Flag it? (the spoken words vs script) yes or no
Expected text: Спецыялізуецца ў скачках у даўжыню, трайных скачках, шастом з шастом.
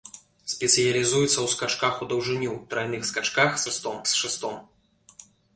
no